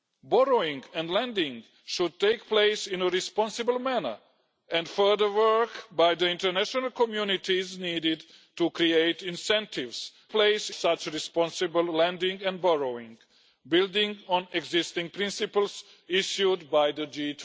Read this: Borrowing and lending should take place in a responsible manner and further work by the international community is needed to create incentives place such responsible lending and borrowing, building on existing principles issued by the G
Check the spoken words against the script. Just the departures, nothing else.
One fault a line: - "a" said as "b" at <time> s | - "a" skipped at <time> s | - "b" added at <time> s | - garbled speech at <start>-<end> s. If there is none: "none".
none